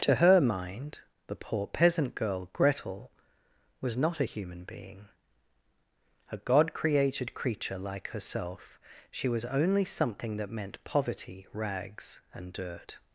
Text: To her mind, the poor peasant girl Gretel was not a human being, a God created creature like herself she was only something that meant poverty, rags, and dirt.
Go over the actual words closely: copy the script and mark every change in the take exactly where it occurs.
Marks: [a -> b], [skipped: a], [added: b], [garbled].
To her mind, the poor peasant girl Gretel was not a human being, a God created creature like herself she was only something that meant poverty, rags, and dirt.